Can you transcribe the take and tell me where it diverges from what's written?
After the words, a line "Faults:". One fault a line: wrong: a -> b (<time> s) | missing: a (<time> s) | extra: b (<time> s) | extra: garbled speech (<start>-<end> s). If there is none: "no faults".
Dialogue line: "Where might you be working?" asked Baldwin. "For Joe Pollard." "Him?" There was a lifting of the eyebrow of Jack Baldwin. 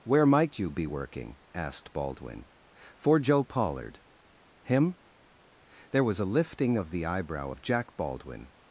"Where might you be working?" asked Baldwin. "For Joe Pollard." "Him?" There was a lifting of the eyebrow of Jack Baldwin.
Faults:
no faults